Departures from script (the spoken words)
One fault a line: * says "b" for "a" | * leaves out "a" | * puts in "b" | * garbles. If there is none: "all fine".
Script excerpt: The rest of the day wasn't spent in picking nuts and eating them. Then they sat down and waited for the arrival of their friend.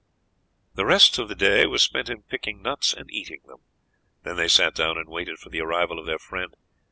* says "was" for "wasn't"